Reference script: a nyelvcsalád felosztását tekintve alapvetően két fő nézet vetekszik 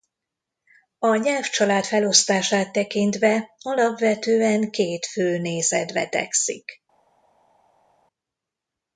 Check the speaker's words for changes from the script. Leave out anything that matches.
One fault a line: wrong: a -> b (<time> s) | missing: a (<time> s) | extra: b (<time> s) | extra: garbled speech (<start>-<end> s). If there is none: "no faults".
no faults